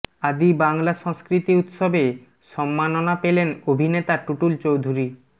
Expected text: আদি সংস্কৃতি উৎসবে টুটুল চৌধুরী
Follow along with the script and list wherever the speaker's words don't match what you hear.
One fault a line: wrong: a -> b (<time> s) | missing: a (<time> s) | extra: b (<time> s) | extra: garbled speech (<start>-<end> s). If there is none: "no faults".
extra: বাংলা (0.6 s)
extra: সম্মাননা পেলেন অভিনেতা (2.5 s)